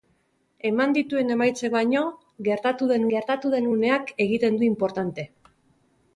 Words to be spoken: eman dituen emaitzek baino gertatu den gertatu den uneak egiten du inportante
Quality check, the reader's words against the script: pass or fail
pass